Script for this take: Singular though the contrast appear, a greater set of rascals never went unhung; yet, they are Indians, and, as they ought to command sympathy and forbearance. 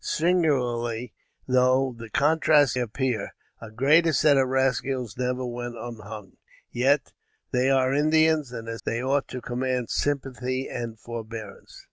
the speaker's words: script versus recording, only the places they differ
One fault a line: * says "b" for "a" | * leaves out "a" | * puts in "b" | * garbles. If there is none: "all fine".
all fine